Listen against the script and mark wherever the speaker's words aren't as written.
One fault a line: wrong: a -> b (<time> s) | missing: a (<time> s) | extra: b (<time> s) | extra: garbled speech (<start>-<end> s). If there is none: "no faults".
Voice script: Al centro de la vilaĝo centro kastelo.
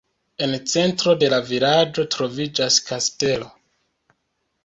wrong: Al -> En (0.4 s)
wrong: centro -> troviĝas (2.2 s)